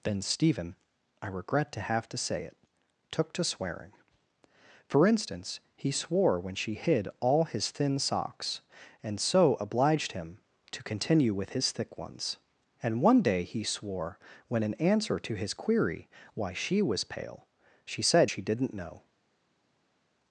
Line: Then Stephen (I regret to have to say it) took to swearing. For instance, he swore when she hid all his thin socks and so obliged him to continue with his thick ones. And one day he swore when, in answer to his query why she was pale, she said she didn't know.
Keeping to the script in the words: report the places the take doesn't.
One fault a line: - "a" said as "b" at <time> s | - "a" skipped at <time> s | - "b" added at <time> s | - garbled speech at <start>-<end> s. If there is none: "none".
none